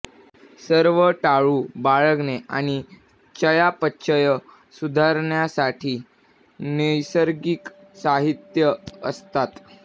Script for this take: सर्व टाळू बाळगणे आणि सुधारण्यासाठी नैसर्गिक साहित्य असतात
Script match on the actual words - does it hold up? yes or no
no